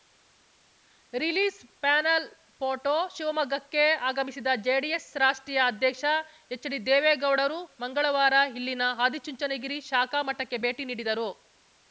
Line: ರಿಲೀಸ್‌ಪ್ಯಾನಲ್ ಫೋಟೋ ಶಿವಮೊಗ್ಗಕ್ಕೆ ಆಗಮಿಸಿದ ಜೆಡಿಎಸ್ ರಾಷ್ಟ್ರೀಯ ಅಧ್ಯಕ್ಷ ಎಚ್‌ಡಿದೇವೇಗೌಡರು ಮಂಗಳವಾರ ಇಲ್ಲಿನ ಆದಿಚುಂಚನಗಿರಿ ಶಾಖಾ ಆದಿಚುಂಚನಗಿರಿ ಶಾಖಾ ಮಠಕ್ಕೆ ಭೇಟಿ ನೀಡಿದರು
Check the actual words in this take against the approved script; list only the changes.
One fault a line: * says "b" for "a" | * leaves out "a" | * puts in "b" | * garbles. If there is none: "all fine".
* leaves out "ಆದಿಚುಂಚನಗಿರಿ ಶಾಖಾ"